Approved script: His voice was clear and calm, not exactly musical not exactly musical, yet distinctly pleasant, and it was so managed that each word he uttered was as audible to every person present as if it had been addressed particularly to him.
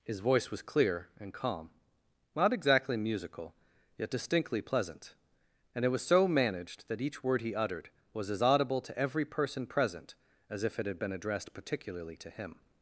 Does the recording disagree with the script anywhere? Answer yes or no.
yes